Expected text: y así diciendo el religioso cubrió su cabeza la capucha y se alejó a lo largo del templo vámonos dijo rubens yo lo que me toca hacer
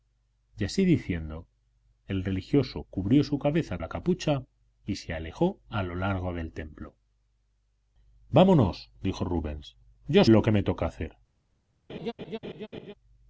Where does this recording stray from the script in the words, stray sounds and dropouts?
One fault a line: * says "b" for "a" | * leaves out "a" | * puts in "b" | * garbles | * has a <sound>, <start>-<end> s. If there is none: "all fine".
* has a laugh, 11.9-12.9 s